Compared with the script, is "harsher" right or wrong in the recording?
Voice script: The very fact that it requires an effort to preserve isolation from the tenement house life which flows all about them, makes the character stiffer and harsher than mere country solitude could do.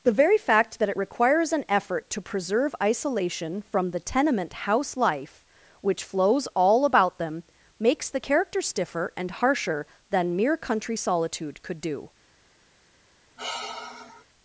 right